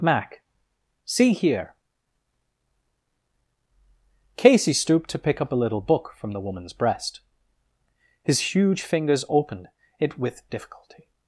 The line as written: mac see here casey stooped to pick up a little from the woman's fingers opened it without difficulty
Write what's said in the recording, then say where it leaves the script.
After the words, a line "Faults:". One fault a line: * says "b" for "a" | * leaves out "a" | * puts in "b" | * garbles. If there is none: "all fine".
mac see here casey stooped to pick up a little book from the woman's breast his huge fingers opened it with difficulty
Faults:
* puts in "book"
* puts in "breast his huge"
* says "with" for "without"